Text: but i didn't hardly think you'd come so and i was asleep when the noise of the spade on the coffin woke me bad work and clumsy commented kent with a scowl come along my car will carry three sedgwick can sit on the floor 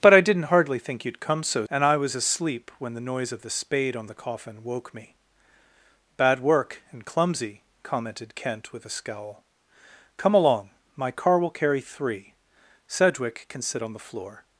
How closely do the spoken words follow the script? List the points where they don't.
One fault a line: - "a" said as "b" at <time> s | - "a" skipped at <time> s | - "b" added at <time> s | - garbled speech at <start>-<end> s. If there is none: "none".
none